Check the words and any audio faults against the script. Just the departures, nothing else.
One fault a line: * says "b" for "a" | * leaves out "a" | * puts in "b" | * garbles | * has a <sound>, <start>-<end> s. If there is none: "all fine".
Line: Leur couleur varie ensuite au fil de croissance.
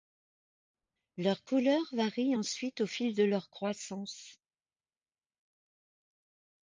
* puts in "leur"